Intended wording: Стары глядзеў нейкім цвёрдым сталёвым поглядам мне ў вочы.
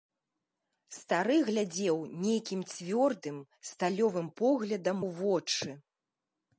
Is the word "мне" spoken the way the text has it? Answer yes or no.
no